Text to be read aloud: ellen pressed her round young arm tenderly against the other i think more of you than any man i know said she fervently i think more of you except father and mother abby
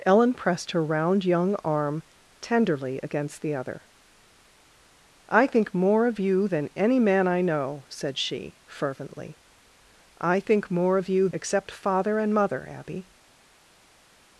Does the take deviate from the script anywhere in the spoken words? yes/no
no